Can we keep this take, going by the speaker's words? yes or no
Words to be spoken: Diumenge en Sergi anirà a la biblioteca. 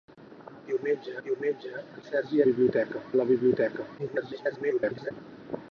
no